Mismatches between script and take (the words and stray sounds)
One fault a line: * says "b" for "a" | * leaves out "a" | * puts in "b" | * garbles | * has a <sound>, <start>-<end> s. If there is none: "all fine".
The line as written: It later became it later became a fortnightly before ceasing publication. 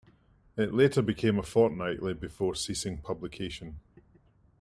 * leaves out "it later became"